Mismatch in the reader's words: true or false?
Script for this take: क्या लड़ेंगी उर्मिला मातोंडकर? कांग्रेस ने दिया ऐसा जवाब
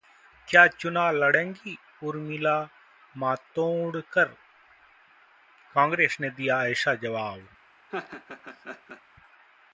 true